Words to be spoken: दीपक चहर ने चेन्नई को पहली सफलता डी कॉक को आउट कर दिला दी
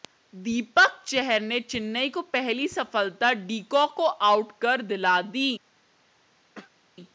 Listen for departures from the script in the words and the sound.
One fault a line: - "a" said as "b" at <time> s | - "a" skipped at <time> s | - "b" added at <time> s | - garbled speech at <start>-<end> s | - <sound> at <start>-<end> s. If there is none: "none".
- throat clearing at 6.5-6.8 s